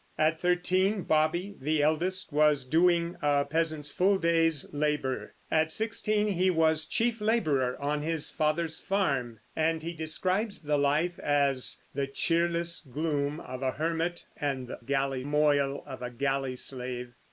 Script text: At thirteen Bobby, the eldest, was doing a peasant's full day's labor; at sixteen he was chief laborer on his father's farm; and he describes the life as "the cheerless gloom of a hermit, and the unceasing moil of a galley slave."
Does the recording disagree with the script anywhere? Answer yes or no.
yes